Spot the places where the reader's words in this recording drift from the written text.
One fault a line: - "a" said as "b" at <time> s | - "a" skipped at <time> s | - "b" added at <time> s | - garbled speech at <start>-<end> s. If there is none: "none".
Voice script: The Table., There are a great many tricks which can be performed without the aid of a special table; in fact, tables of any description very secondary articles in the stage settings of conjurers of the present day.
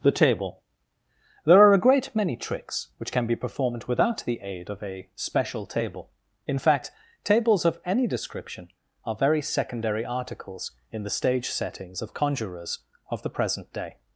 - "are" added at 9.0 s